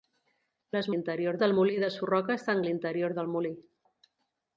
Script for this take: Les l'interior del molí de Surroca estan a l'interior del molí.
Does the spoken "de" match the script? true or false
true